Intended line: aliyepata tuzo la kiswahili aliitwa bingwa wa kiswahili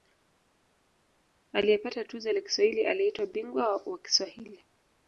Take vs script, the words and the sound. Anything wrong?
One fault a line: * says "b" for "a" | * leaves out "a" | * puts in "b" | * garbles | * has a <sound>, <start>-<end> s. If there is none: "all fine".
all fine